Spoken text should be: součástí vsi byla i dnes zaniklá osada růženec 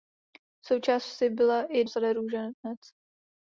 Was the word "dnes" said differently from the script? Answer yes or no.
yes